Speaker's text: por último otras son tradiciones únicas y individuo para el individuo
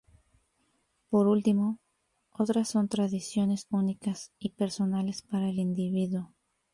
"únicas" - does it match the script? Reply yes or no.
yes